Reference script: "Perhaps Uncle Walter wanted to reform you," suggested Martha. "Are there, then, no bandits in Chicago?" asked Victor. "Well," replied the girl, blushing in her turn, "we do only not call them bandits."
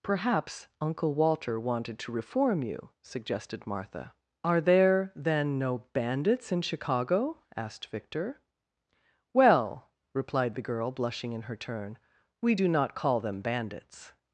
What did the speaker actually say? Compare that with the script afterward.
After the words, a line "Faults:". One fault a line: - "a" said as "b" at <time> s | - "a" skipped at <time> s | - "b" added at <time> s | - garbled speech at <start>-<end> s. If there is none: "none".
"Perhaps Uncle Walter wanted to reform you," suggested Martha. "Are there, then, no bandits in Chicago?" asked Victor. "Well," replied the girl, blushing in her turn, "we do not call them bandits."
Faults:
- "only" skipped at 12.7 s